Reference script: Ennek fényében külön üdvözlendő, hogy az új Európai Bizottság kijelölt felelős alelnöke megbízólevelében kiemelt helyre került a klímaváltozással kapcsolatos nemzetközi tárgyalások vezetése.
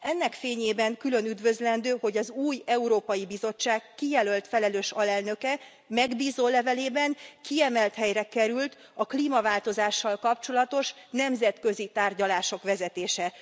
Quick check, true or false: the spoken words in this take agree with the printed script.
true